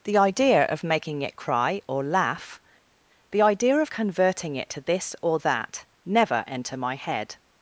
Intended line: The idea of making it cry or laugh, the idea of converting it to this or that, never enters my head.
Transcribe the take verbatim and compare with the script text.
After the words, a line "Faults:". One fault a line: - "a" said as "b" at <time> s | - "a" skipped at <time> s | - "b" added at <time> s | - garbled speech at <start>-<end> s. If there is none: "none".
The idea of making it cry or laugh, the idea of converting it to this or that, never enter my head.
Faults:
- "enters" said as "enter" at 6.5 s